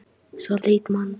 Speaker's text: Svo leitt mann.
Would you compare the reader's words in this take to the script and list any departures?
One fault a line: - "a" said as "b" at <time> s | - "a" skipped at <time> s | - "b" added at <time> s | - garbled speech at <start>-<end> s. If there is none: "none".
none